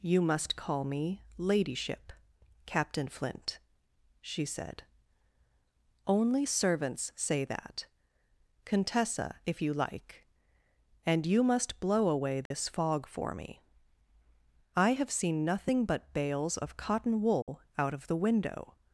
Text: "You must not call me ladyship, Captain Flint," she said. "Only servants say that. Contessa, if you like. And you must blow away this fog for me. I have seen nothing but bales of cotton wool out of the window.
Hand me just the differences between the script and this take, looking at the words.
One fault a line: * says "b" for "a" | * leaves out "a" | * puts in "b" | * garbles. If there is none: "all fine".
* leaves out "not"